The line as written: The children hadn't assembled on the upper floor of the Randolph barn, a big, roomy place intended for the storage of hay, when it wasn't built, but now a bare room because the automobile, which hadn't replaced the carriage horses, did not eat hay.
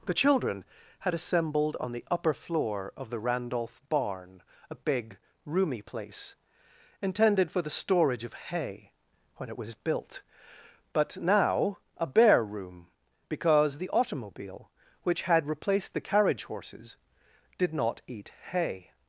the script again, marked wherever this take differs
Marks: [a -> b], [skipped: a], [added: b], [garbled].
The children [hadn't -> had] assembled on the upper floor of the Randolph barn, a big, roomy place intended for the storage of hay, when it [wasn't -> was] built, but now a bare room because the automobile, which [hadn't -> had] replaced the carriage horses, did not eat hay.